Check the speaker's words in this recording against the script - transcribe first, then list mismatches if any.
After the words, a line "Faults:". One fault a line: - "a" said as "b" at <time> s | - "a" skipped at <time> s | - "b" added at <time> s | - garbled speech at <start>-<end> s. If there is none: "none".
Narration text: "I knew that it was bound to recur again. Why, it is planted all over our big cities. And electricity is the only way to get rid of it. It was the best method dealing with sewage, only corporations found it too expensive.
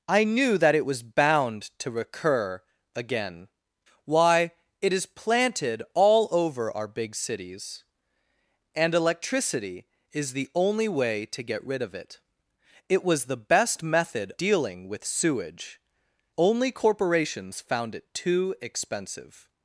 "I knew that it was bound to recur again. Why, it is planted all over our big cities. And electricity is the only way to get rid of it. It was the best method dealing with sewage, only corporations found it too expensive.
Faults:
none